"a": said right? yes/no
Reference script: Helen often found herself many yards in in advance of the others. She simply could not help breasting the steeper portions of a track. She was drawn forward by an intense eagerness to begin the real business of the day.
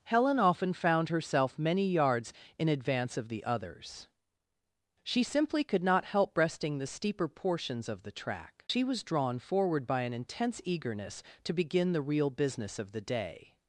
no